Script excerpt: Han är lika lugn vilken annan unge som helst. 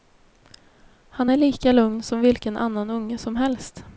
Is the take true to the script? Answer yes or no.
no